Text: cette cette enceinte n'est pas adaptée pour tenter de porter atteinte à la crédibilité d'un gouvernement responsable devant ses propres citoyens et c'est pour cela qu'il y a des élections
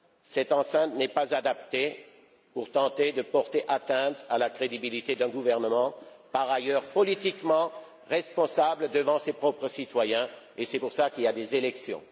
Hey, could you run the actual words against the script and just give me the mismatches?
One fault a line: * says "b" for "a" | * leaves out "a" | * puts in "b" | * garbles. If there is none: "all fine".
* leaves out "cette"
* puts in "par ailleurs politiquement"